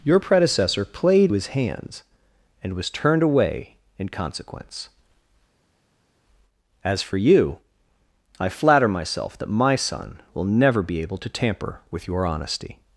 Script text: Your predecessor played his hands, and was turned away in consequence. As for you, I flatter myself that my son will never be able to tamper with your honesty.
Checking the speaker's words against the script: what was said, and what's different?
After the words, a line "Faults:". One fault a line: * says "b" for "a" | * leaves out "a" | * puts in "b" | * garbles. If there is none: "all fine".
Your predecessor played his hands, and was turned away in consequence. As for you, I flatter myself that my son will never be able to tamper with your honesty.
Faults:
all fine